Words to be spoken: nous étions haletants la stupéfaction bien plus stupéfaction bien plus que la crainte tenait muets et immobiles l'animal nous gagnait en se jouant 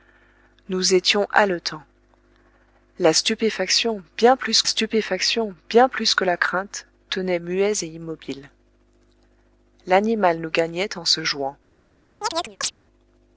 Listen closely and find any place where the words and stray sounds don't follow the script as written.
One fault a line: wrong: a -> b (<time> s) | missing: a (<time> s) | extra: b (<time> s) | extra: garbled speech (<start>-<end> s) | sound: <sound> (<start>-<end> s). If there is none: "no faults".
sound: chirp (12.2-12.7 s)